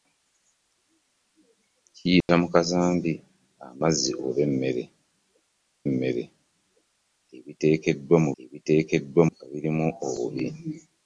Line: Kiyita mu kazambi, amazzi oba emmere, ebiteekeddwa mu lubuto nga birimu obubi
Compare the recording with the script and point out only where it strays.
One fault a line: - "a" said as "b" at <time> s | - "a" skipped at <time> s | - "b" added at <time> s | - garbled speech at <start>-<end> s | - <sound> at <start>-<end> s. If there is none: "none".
- dropout at 2.2-2.3 s
- "emmere" added at 5.9 s
- "lubuto" said as "ebiteekeddwa" at 8.4 s